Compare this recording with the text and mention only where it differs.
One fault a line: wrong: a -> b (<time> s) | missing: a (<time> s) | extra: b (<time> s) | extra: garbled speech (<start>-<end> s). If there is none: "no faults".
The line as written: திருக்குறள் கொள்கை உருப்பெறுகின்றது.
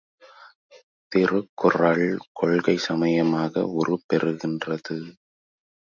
extra: சமயமாக (2.8 s)